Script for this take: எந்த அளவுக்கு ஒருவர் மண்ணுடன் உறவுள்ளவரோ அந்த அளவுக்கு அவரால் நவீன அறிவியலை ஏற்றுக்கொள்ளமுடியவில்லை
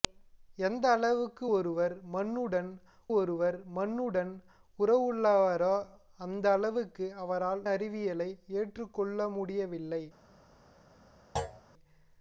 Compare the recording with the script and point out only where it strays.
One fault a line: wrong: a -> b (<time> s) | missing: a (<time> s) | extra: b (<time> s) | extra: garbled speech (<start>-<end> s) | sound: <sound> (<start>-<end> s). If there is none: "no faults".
extra: ஒருவர் மண்ணுடன் (3.2 s)
missing: நவீன (7.6 s)
sound: thud (11.4-11.6 s)